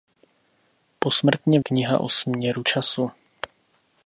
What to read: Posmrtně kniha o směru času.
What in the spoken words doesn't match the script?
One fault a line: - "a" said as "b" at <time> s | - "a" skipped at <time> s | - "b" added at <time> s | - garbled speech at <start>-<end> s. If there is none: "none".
none